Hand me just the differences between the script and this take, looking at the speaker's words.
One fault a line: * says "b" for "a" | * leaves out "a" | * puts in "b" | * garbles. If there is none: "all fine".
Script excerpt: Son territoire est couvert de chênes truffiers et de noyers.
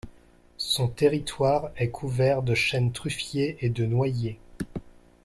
all fine